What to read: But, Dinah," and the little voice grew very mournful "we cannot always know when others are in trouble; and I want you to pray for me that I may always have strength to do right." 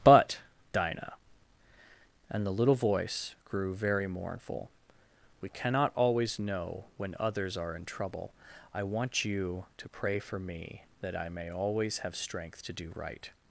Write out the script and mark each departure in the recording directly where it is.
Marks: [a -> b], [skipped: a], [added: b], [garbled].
But, Dinah," and the little voice grew very mournful "we cannot always know when others are in trouble; [skipped: and] I want you to pray for me that I may always have strength to do right."